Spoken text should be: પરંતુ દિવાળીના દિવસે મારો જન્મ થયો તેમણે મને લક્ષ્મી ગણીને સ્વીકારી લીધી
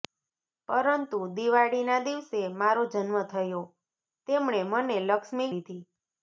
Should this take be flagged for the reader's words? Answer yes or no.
yes